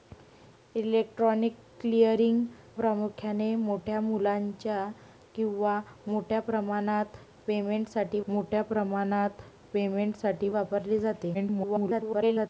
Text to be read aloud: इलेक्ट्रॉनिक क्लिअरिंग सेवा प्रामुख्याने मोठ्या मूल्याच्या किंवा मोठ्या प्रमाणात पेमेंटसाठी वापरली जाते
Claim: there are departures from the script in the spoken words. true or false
true